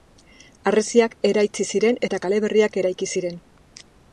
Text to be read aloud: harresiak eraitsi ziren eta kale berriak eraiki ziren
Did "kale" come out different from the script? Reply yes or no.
no